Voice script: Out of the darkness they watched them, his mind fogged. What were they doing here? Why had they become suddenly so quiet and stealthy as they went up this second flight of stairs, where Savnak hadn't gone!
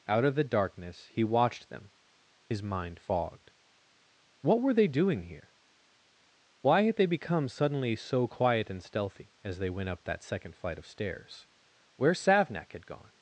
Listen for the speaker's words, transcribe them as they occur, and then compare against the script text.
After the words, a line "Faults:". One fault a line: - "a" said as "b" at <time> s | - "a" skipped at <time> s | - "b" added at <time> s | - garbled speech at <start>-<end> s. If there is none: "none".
Out of the darkness he watched them, his mind fogged. What were they doing here? Why had they become suddenly so quiet and stealthy as they went up that second flight of stairs, where Savnak had gone!
Faults:
- "they" said as "he" at 1.1 s
- "this" said as "that" at 10.0 s
- "hadn't" said as "had" at 12.7 s